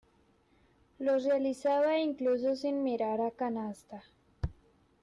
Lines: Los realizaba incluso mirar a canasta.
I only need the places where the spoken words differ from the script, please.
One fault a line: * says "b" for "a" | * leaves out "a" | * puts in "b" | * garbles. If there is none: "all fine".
* puts in "sin"